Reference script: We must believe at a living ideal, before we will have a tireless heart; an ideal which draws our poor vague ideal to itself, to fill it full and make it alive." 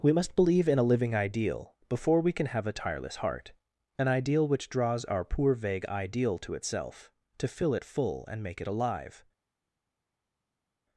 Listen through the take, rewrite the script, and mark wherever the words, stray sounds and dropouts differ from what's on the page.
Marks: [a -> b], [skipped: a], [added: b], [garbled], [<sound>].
We must believe [at -> in] a living ideal, before we [will -> can] have a tireless heart; an ideal which draws our poor vague ideal to itself, to fill it full and make it alive."